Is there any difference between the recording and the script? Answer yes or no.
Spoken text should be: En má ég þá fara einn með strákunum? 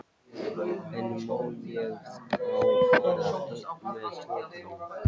no